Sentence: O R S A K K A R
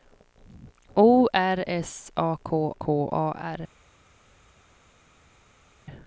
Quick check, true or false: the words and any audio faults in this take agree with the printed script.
true